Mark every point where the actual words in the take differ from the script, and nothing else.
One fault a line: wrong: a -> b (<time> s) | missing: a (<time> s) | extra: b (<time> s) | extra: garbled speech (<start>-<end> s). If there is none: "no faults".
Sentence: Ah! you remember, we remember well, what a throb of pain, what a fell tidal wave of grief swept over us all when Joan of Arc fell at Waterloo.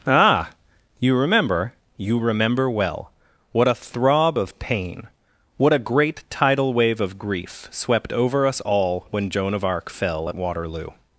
wrong: we -> you (1.9 s)
wrong: fell -> great (5.8 s)